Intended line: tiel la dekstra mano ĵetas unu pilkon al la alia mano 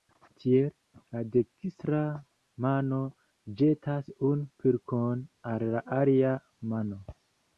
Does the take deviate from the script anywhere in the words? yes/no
no